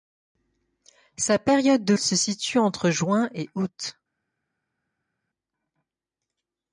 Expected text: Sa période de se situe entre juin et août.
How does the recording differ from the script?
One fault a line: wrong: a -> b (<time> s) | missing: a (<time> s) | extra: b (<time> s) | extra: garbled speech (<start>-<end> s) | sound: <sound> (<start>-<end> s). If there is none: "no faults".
no faults